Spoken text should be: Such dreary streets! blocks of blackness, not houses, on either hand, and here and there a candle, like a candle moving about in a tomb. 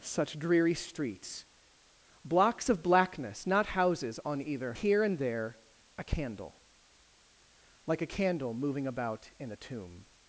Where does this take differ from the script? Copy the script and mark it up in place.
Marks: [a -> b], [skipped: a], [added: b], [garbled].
Such dreary streets! blocks of blackness, not houses, on either [skipped: hand, and] here and there a candle, like a candle moving about in a tomb.